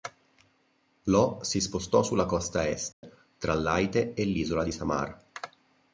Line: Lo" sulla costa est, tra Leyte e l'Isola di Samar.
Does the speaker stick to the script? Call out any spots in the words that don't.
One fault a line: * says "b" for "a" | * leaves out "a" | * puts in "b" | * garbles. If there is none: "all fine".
* puts in "si spostò"